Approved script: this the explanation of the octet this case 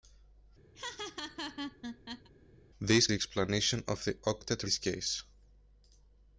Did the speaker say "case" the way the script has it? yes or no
yes